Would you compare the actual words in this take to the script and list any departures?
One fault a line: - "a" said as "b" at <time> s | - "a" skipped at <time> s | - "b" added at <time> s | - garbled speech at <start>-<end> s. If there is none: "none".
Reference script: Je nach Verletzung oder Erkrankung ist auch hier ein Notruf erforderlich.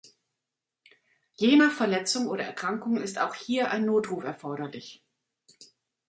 none